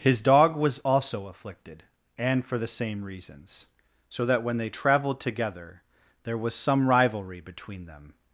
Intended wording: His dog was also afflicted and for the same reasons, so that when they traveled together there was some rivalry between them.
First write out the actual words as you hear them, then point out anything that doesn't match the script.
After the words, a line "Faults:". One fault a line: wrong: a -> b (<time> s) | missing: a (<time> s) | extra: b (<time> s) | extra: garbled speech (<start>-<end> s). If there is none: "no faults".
His dog was also afflicted and for the same reasons, so that when they traveled together there was some rivalry between them.
Faults:
no faults